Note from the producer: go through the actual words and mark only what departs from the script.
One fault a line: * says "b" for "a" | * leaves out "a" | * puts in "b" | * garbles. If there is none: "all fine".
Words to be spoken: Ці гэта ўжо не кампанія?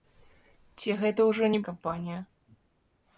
all fine